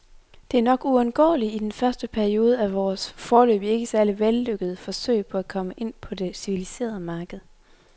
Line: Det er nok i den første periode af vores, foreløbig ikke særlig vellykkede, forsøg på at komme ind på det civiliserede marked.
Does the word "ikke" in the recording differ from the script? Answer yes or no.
no